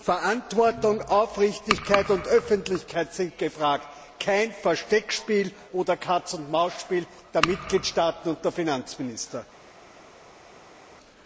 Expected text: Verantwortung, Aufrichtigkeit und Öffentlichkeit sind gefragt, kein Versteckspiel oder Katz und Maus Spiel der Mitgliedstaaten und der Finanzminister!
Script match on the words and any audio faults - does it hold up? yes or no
yes